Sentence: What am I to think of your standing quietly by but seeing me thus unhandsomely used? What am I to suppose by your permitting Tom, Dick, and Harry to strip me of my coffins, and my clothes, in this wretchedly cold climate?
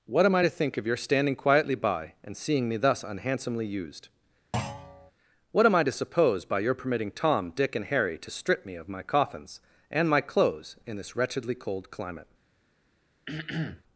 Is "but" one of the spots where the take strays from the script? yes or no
yes